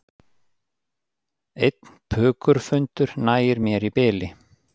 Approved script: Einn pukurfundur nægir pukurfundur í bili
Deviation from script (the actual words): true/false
true